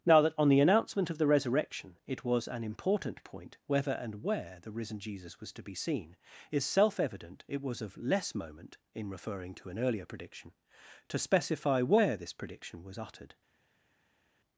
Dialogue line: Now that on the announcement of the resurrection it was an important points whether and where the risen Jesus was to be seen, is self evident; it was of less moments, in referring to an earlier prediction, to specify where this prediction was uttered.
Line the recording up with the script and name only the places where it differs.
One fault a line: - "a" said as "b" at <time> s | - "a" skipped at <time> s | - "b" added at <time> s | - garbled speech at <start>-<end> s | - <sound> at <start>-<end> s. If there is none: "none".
- "points" said as "point" at 3.2 s
- "moments" said as "moment" at 8.3 s